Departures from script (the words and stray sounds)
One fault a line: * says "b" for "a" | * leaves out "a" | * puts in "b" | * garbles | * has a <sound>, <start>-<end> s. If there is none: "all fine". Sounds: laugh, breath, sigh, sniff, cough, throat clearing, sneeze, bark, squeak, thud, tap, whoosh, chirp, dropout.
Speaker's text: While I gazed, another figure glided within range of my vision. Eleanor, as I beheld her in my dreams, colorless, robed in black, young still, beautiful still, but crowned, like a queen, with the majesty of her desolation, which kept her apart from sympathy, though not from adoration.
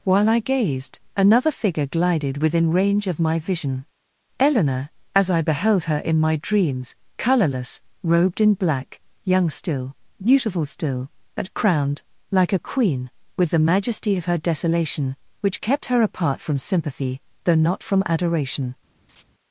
* has a laugh, 19.1-19.2 s